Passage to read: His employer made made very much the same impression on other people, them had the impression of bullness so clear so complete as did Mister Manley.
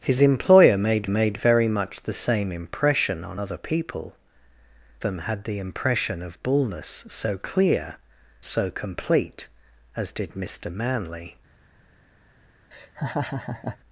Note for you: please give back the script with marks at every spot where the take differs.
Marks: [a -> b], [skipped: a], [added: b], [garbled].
His employer made made very much the same impression on other people, them had the impression of bullness so clear so complete as did Mister Manley.